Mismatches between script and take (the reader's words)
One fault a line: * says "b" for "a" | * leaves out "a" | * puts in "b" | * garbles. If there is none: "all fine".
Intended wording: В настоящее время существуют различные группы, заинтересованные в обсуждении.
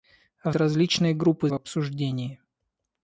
* leaves out "настоящее время существуют"
* leaves out "заинтересованные"